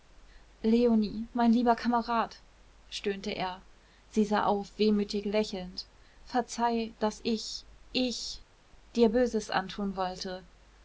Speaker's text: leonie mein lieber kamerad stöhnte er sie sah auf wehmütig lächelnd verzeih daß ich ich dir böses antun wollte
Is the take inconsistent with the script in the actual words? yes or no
no